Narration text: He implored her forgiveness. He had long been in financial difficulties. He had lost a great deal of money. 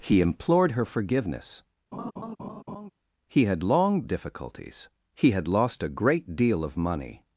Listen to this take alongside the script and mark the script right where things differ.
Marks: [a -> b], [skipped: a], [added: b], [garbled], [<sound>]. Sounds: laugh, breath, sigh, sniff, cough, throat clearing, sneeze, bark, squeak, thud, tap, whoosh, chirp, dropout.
He implored her forgiveness. [laugh] He had long [skipped: been in financial] difficulties. He had lost a great deal of money.